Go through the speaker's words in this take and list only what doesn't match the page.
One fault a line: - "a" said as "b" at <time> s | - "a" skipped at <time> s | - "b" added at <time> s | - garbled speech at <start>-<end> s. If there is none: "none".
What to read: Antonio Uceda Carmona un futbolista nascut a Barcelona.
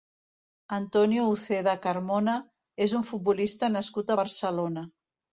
- "és" added at 2.9 s